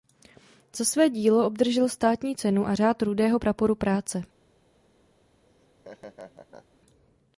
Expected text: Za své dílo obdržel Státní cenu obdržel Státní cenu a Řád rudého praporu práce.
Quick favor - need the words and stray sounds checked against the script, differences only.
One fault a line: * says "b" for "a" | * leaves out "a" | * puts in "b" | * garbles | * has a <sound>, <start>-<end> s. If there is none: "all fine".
* leaves out "obdržel Státní cenu"
* has a laugh, 5.4-6.8 s